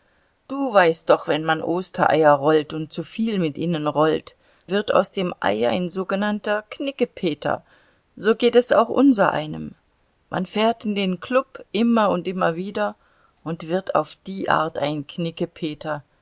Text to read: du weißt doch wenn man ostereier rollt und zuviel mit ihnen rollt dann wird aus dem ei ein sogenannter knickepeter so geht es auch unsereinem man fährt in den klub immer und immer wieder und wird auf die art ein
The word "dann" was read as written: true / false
false